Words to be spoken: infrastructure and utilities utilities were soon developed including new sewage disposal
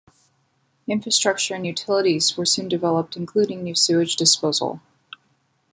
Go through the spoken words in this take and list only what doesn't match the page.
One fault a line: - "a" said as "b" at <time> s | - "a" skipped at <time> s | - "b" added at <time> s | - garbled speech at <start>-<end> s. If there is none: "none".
- "utilities" skipped at 2.3 s